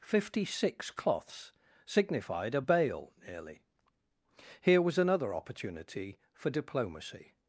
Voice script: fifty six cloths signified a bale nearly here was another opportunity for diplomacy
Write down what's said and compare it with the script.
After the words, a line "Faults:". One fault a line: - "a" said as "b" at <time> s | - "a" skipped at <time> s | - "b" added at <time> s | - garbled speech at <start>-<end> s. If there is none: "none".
fifty six cloths signified a bale nearly here was another opportunity for diplomacy
Faults:
none